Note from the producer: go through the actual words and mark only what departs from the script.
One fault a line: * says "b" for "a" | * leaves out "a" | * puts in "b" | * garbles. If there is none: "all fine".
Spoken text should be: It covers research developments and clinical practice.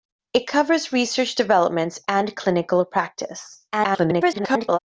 * garbles